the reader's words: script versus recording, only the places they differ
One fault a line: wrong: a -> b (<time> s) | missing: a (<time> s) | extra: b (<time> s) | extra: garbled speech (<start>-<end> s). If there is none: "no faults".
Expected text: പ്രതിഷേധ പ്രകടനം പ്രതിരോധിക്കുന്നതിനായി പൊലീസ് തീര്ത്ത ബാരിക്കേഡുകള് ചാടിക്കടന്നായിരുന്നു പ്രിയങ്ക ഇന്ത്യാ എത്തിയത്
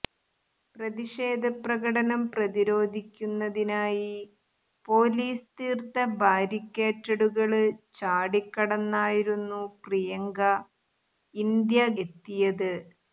no faults